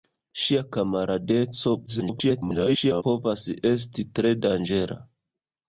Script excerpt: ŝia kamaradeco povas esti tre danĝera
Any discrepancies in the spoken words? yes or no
yes